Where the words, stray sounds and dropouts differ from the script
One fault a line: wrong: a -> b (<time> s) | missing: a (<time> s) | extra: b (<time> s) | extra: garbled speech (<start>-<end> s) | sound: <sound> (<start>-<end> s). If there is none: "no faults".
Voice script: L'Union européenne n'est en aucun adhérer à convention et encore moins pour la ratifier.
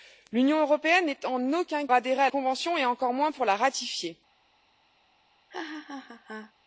sound: laugh (5.5-6.5 s)